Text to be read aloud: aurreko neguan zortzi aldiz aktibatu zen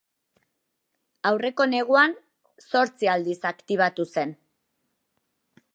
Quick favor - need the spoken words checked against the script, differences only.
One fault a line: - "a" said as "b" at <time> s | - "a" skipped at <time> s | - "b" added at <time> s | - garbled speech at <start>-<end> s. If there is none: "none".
none